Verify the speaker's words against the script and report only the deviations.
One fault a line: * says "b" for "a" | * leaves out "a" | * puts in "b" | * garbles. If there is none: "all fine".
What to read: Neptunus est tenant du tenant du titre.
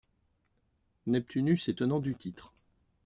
* leaves out "tenant du"